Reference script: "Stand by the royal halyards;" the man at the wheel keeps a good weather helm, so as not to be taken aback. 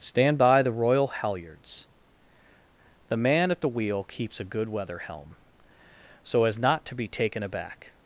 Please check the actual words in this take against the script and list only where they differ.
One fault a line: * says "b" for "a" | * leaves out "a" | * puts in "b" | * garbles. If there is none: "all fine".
all fine